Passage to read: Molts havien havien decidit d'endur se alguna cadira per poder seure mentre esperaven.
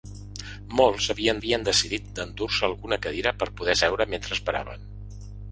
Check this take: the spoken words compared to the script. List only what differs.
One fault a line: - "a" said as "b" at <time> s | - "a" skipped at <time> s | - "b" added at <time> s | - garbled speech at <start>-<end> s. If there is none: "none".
none